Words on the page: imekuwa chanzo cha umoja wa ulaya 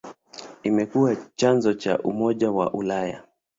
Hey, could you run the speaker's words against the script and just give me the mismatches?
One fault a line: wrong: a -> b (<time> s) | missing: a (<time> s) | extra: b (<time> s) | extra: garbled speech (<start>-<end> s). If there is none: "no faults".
no faults